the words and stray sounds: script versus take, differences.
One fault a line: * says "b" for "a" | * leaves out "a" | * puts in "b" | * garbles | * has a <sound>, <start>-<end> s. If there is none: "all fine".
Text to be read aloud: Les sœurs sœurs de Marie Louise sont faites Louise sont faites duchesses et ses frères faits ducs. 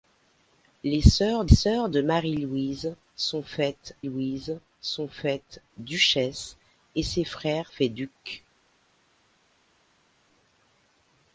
all fine